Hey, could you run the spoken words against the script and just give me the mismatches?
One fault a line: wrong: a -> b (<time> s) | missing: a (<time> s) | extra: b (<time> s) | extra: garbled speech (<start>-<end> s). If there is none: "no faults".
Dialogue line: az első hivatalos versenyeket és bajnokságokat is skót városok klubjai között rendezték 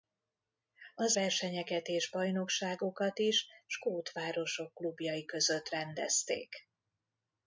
missing: első hivatalos (1.2 s)